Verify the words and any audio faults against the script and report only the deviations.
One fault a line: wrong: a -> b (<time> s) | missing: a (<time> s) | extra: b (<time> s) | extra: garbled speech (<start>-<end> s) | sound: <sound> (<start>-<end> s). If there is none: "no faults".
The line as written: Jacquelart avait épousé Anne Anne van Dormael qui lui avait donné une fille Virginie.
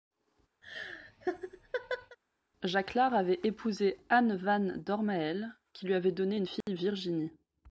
sound: laugh (0.6-2.2 s)
missing: Anne (4.3 s)
sound: dropout (6.6-6.7 s)